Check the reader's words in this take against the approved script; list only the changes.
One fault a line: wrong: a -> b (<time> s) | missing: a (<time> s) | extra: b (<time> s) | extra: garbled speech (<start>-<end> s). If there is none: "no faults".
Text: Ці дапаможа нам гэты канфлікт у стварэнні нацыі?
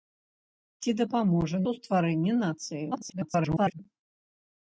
missing: нам гэты канфлікт (1.6 s)
extra: garbled speech (2.9-3.8 s)